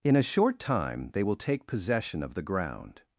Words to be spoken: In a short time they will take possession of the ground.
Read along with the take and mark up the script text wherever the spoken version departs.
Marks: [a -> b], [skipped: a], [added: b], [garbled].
In a short time they will take possession of the ground.